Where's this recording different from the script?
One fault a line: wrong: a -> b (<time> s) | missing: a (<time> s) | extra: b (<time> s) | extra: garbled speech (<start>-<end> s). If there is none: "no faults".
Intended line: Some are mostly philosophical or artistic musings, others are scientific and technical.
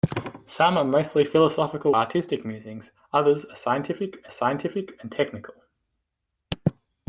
missing: or (1.9 s)
extra: scientific (4.3 s)